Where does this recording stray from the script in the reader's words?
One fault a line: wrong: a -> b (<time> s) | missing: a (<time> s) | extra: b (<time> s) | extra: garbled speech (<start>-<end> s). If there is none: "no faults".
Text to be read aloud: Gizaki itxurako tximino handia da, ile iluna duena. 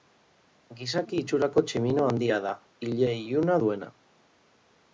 no faults